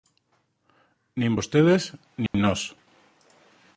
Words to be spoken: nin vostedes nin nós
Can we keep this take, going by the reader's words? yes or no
yes